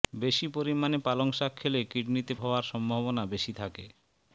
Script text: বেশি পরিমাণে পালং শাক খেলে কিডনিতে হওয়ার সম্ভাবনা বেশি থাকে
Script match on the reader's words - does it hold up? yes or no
yes